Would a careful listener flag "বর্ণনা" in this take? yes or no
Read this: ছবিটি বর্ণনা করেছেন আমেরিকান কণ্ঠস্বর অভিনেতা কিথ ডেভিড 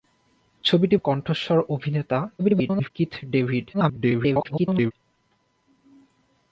yes